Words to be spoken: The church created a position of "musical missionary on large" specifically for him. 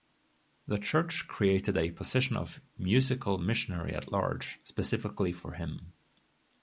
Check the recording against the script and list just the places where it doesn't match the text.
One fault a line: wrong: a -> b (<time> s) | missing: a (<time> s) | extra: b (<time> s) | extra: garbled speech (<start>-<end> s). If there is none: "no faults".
wrong: on -> at (3.9 s)